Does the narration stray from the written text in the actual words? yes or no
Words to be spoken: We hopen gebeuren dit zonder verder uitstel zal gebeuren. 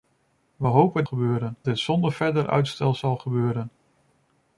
no